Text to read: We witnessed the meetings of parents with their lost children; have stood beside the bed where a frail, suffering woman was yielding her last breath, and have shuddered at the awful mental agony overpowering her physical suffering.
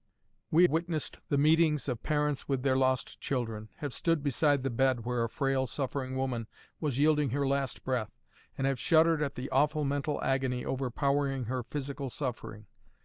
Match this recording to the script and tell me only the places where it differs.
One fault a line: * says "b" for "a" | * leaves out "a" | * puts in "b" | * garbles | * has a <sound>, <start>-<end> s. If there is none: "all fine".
all fine